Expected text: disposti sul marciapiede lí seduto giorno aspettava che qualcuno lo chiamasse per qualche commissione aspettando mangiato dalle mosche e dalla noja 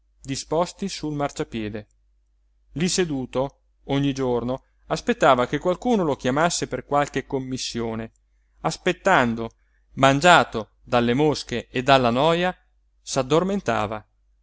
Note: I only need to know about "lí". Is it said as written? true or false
true